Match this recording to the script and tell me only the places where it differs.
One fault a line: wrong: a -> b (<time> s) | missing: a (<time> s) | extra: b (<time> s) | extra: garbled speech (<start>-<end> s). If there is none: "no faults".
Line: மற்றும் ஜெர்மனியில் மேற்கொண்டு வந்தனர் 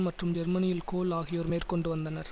extra: கோல் ஆகியோர் (0.9 s)